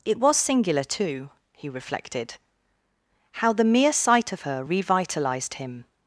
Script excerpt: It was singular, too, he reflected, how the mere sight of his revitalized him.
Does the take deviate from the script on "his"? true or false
true